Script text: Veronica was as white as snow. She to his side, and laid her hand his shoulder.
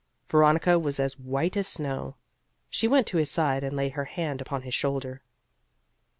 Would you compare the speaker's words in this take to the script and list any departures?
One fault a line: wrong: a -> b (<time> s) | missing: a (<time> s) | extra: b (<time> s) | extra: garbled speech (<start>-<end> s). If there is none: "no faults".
extra: went (2.9 s)
extra: upon (4.4 s)